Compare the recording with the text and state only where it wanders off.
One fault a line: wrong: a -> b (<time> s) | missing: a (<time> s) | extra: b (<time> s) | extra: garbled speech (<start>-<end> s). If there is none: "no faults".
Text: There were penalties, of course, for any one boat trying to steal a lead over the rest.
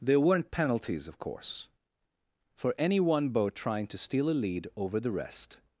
wrong: were -> weren't (0.2 s)